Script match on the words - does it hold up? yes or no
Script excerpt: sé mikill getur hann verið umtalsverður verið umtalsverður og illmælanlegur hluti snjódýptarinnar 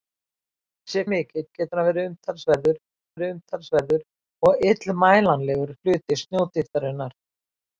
yes